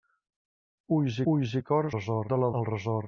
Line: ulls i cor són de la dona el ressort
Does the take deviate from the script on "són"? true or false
true